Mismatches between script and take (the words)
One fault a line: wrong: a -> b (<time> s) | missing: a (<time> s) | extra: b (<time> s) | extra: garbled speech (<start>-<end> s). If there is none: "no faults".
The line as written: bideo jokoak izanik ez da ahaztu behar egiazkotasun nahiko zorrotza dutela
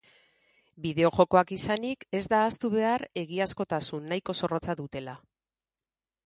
no faults